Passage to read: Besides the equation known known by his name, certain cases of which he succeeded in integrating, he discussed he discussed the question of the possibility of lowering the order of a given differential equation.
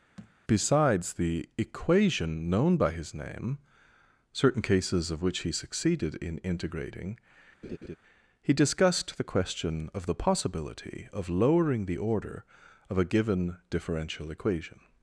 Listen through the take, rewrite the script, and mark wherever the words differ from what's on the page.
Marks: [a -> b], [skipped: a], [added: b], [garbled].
Besides the equation known [skipped: known] by his name, certain cases of which he succeeded in integrating, he discussed [skipped: he discussed] the question of the possibility of lowering the order of a given differential equation.